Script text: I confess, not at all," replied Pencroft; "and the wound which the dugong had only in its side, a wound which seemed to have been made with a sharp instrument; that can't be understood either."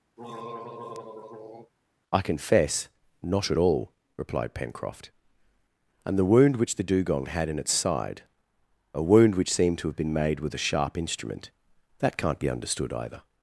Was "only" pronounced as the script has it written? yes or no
no